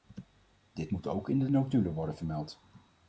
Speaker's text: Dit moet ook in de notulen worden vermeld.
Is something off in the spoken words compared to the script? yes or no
no